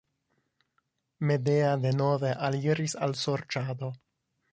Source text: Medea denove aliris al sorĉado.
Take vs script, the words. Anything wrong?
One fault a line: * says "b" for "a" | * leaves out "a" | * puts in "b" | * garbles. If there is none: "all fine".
all fine